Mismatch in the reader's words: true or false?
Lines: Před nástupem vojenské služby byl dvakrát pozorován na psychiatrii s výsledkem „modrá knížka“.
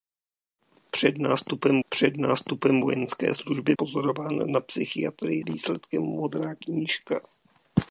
true